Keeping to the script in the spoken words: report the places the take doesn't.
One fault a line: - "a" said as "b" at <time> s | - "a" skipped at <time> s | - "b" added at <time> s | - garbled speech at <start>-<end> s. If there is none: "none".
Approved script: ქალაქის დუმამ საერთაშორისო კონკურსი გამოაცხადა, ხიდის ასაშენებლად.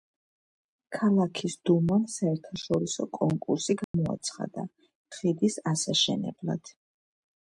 none